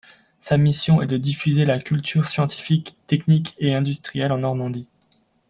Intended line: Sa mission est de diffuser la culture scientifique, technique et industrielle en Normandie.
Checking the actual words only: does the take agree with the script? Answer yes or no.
yes